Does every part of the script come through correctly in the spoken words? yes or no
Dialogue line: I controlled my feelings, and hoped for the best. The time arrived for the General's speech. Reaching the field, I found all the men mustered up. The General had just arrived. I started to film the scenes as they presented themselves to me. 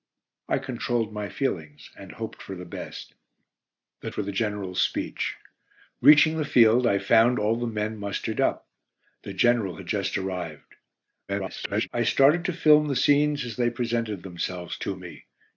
no